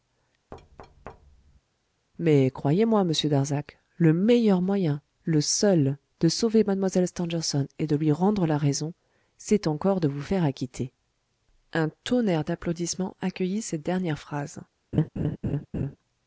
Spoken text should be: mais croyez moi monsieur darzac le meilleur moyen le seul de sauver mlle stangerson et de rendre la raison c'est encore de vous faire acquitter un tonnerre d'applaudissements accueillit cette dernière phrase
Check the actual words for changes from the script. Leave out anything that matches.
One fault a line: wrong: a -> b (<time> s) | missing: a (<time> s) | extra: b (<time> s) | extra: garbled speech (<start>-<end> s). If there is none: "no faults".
extra: lui (8.0 s)